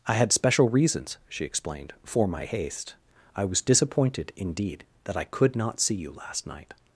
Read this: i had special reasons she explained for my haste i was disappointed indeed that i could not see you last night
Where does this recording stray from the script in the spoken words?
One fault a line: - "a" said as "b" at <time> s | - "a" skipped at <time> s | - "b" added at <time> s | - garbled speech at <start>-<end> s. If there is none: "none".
none